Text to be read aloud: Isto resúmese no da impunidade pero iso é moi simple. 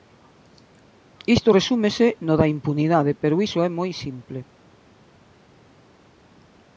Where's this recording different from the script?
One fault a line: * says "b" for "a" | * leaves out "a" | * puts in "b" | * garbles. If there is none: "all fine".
all fine